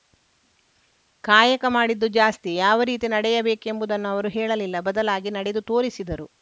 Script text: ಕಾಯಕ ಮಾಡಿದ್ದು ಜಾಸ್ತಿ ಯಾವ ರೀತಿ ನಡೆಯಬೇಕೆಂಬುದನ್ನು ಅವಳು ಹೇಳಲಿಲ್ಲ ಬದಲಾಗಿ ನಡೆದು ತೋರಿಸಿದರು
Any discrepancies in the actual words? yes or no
yes